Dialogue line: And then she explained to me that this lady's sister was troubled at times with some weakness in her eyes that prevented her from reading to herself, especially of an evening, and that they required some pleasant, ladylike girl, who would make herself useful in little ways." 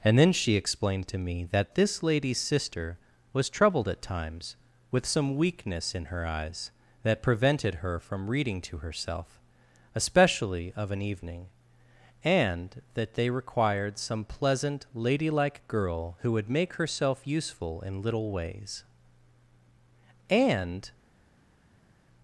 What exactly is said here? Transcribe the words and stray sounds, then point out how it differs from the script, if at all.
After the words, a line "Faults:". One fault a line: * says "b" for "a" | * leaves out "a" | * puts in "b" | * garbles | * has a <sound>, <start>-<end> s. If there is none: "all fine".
And then she explained to me that this lady's sister was troubled at times with some weakness in her eyes that prevented her from reading to herself, especially of an evening, and that they required some pleasant, ladylike girl, who would make herself useful in little ways." "And
Faults:
* puts in "And"